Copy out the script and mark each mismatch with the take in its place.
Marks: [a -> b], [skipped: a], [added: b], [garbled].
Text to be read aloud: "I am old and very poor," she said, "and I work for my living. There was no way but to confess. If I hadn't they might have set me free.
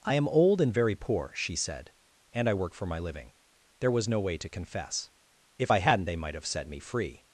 "I am old and very poor," she said, "and I work for my living. There was no way [skipped: but] to confess. If I hadn't they might have set me free.